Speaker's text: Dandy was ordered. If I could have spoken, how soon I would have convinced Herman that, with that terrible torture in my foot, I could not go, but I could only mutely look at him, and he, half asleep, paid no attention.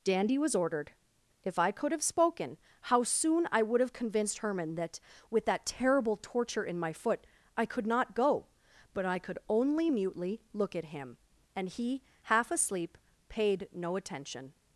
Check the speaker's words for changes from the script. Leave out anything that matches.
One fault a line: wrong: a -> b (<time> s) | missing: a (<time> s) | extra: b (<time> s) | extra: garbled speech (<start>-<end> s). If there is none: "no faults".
no faults